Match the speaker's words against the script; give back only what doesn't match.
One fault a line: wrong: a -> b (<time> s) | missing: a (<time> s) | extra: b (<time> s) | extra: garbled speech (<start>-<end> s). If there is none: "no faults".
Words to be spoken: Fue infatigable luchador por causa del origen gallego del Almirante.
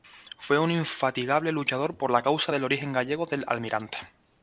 extra: un (0.6 s)
extra: la (2.1 s)